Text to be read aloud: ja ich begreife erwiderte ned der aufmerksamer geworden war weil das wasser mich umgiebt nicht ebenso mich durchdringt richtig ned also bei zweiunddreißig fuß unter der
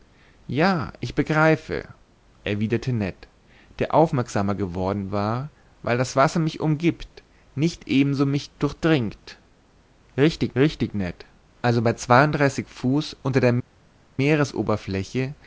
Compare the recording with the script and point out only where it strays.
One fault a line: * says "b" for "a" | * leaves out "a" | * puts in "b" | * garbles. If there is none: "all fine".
* puts in "richtig"